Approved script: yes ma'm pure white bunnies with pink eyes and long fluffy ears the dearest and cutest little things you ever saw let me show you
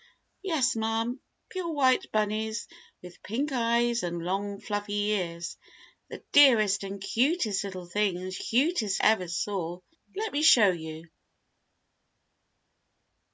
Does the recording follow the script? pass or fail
fail